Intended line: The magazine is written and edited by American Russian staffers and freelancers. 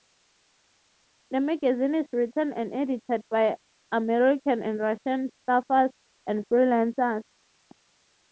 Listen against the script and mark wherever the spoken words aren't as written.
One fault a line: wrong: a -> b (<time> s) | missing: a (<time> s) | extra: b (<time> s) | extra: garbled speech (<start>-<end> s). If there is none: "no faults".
extra: and (4.6 s)